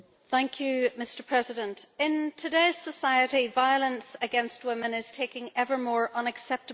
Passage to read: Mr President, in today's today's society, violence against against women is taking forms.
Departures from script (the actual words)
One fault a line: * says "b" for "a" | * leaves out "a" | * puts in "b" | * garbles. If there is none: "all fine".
* leaves out "today's"
* leaves out "against"
* puts in "ever more unacceptable"